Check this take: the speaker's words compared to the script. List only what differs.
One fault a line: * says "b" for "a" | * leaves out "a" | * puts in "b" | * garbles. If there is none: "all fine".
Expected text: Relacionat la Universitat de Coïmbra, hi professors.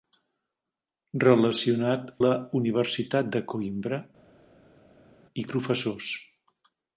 all fine